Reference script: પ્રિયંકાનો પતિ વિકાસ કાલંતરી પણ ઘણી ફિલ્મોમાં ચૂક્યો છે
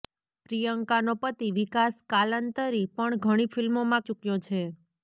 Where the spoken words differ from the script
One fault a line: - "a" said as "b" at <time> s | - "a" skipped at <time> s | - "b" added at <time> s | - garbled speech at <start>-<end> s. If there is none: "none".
none